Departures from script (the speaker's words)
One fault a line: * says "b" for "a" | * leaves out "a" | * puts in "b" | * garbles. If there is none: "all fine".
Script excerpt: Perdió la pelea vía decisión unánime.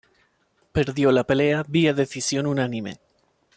all fine